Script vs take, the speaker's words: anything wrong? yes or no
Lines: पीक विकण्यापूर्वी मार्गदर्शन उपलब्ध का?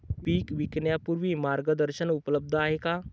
yes